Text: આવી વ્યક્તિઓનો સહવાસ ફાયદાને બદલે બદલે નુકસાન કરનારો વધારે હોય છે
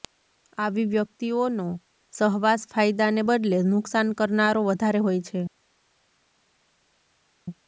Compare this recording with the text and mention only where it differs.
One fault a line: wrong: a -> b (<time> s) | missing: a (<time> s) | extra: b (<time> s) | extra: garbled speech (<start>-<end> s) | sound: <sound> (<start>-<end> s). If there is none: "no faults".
missing: બદલે (3.6 s)